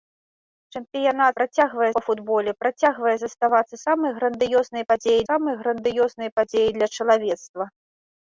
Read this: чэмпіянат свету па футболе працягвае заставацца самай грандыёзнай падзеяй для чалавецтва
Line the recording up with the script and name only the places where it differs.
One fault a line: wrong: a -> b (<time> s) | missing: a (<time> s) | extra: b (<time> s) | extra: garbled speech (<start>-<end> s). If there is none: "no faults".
wrong: свету -> працягвае (1.4 s)
extra: самай грандыёзнай падзеяй (5.3 s)